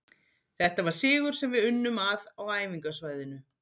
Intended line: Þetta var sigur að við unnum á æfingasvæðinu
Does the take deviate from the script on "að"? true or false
true